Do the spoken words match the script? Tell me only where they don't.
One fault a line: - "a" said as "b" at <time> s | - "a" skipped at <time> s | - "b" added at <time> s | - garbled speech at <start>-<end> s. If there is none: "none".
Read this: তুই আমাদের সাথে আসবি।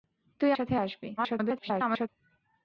- "আমাদের" skipped at 0.5 s
- garbled speech at 1.2-2.1 s